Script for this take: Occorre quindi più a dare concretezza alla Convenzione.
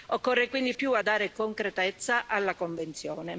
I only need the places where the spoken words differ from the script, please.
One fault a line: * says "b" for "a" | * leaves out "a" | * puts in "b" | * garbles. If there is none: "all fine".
all fine